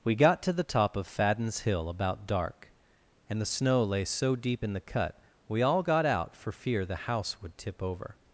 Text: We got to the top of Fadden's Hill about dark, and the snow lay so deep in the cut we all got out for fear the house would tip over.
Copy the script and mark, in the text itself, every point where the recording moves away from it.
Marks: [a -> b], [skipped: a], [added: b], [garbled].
We got to the top of Fadden's Hill about dark, and the snow lay so deep in the cut we all got out for fear the house would tip over.